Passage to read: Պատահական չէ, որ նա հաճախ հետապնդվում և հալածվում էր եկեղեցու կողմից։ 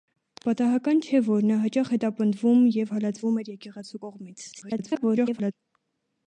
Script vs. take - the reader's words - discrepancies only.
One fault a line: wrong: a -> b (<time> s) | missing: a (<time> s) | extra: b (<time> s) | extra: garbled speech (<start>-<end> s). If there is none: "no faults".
extra: garbled speech (4.5-5.5 s)